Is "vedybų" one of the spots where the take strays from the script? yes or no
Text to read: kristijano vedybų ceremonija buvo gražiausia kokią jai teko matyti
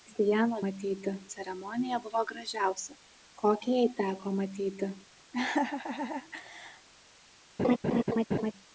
yes